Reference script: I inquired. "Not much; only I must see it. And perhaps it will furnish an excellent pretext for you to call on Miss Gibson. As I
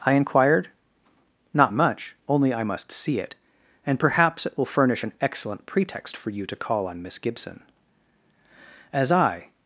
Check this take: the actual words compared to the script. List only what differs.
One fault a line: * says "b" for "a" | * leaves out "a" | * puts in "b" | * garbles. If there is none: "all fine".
all fine